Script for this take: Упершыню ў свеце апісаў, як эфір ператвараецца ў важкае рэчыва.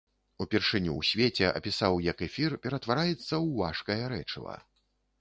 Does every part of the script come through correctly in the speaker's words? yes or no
yes